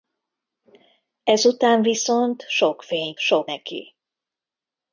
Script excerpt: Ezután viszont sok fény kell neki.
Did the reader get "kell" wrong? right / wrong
wrong